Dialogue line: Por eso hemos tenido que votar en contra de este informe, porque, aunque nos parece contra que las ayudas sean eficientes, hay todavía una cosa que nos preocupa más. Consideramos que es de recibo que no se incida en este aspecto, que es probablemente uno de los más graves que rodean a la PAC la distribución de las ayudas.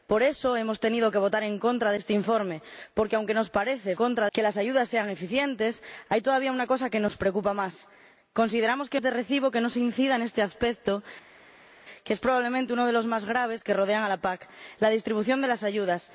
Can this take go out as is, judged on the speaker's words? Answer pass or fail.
pass